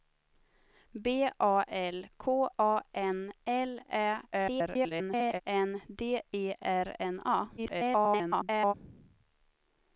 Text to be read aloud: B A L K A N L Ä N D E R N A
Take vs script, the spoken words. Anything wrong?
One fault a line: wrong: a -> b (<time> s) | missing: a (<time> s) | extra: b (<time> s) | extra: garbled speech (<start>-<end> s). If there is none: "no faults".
extra: garbled speech (4.3-5.4 s)
extra: garbled speech (7.6-8.7 s)